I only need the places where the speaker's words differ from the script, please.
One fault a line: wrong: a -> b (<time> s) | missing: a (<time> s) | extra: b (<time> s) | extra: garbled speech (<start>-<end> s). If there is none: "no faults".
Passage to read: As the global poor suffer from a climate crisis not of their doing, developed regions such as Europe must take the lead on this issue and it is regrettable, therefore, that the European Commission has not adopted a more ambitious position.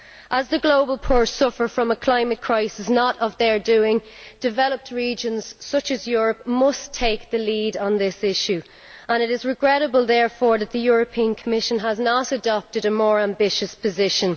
no faults